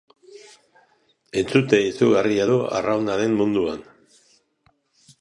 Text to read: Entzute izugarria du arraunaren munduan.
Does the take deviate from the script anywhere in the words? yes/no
no